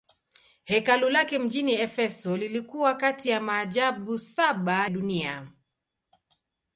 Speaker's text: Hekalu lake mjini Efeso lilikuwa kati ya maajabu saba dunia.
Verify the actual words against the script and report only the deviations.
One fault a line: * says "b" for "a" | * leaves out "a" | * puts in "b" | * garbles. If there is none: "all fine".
all fine